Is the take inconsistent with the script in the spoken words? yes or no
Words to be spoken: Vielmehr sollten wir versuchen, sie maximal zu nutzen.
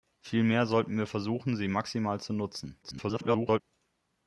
yes